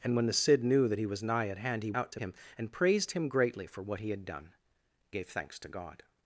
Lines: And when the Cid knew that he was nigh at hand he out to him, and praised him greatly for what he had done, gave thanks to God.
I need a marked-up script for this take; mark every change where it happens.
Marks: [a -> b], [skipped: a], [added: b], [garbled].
And when the Cid knew that he was nigh at hand he out to him, and praised him greatly for what he had done, gave thanks to God.